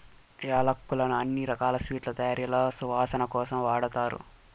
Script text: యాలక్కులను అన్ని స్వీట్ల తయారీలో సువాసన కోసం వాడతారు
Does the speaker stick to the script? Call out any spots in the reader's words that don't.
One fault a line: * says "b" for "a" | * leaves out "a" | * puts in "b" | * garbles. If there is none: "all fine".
* puts in "రకాల"